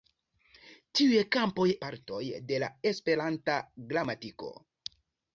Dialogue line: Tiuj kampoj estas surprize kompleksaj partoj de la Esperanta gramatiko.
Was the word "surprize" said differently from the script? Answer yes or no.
yes